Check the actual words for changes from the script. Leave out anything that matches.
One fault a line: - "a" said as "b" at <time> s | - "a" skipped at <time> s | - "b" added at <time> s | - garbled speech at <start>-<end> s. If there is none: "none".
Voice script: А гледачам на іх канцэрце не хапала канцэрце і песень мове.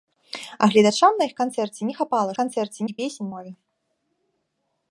none